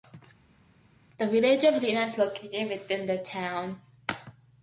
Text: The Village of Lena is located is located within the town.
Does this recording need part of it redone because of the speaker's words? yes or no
yes